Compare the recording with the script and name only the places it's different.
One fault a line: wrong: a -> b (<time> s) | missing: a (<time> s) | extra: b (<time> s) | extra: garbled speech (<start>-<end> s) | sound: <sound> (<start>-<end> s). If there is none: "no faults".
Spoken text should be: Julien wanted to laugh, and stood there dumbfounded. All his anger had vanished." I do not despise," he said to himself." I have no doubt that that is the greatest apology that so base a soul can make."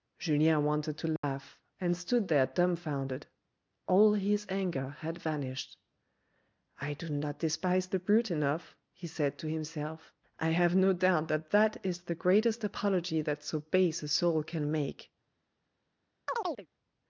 sound: dropout (1.2-1.2 s)
extra: the brute enough (7.8 s)
sound: chirp (16.3-16.7 s)